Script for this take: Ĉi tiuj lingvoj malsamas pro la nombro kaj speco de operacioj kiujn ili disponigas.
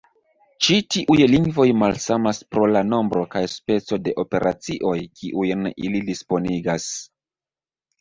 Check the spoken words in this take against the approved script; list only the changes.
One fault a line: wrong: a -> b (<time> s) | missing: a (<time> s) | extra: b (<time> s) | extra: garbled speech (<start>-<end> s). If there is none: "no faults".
no faults